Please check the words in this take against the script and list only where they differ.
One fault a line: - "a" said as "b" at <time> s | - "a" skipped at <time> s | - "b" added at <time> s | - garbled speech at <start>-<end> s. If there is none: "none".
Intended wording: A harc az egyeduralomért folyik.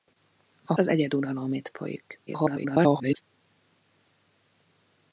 - "harc" skipped at 0.7 s
- garbled speech at 2.3-3.2 s